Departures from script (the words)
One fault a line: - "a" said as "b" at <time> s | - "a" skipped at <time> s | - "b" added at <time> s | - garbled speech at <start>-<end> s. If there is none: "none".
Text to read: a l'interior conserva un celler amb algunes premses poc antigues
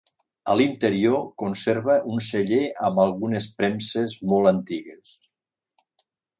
- "poc" said as "molt" at 4.3 s